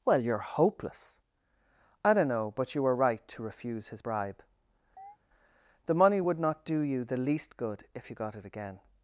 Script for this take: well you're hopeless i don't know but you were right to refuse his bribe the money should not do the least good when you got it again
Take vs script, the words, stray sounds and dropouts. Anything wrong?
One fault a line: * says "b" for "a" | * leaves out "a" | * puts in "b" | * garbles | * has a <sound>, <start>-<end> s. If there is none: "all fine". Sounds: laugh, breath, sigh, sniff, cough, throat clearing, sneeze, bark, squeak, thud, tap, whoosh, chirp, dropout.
* has a chirp, 5.0-5.2 s
* says "would" for "should"
* puts in "you"
* says "if" for "when"